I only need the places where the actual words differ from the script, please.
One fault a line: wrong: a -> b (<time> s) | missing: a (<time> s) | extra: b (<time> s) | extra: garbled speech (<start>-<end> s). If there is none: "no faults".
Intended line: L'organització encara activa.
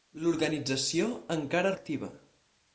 no faults